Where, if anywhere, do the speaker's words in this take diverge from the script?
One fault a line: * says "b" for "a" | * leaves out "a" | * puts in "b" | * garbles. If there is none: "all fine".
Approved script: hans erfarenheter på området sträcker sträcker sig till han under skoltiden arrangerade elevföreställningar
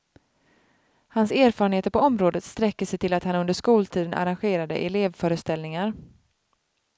* leaves out "sträcker"
* puts in "att"